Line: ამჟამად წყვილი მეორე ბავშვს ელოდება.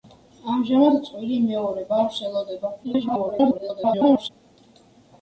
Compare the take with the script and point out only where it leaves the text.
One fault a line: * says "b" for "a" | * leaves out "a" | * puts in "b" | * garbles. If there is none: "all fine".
* garbles